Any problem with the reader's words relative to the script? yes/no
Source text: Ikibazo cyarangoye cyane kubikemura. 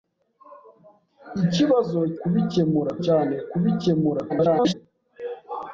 yes